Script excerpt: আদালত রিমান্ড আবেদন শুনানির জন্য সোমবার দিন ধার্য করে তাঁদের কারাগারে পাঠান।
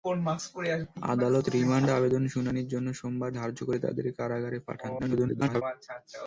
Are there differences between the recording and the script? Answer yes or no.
yes